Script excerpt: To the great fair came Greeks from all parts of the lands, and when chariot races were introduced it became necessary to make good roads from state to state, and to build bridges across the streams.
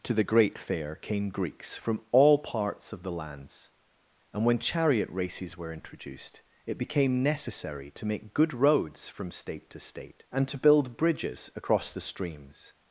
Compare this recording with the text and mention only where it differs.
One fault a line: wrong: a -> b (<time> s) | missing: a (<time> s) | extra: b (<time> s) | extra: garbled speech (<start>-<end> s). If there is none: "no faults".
no faults